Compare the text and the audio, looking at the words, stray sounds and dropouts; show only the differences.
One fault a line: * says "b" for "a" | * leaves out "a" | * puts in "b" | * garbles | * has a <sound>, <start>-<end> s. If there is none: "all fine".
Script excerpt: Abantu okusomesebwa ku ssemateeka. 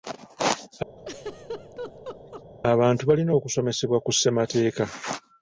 * has a laugh, 1.0-2.4 s
* puts in "balina"